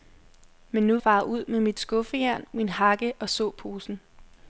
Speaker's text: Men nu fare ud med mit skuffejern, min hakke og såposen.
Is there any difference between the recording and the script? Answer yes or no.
no